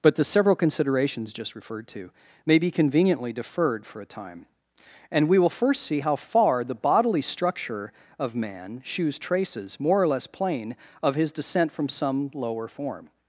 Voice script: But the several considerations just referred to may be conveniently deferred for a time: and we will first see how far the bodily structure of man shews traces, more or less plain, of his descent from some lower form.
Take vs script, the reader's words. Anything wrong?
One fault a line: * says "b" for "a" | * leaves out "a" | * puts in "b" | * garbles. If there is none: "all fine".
all fine